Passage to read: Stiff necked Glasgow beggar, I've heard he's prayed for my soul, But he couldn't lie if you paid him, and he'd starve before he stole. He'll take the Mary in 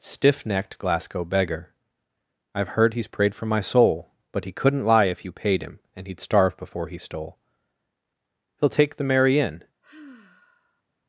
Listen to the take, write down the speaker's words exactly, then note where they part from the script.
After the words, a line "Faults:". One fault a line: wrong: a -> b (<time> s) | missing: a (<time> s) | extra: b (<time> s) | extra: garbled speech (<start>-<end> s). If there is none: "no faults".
Stiff necked Glasgow beggar, I've heard he's prayed for my soul, But he couldn't lie if you paid him, and he'd starve before he stole. He'll take the Mary in
Faults:
no faults